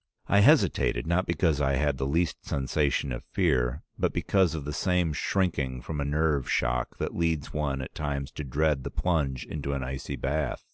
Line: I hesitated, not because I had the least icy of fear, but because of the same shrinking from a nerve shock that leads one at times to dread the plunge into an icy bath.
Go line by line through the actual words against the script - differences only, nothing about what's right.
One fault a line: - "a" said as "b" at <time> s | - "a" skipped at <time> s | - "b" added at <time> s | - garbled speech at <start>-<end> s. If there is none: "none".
- "icy" said as "sensation" at 2.4 s